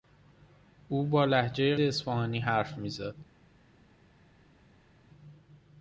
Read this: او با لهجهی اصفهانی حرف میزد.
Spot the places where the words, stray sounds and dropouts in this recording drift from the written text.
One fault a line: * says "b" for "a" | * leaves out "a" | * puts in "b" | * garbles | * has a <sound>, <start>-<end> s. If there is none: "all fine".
all fine